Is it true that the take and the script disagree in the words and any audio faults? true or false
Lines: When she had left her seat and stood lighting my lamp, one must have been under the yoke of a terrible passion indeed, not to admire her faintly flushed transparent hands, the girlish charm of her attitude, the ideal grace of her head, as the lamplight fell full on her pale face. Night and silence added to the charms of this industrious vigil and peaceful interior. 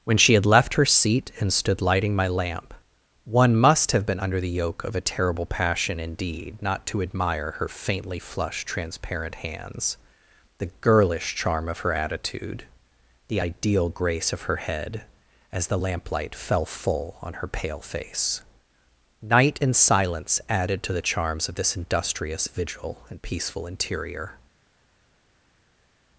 false